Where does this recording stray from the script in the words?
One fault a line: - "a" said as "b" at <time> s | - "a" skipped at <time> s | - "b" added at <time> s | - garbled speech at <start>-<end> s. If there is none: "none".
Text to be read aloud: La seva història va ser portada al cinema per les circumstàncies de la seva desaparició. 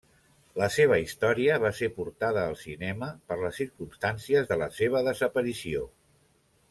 none